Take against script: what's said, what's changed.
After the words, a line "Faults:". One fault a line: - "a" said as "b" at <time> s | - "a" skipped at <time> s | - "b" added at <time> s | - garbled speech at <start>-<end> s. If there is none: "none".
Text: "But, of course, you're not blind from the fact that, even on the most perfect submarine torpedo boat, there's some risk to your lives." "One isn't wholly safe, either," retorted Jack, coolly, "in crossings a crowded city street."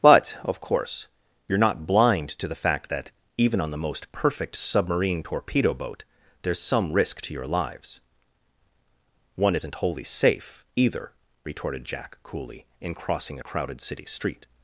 "But, of course, you're not blind to the fact that, even on the most perfect submarine torpedo boat, there's some risk to your lives." "One isn't wholly safe, either," retorted Jack, coolly, "in crossing a crowded city street."
Faults:
- "from" said as "to" at 2.3 s
- "crossings" said as "crossing" at 12.9 s